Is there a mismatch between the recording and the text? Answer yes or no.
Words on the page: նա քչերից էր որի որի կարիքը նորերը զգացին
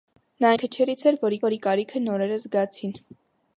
no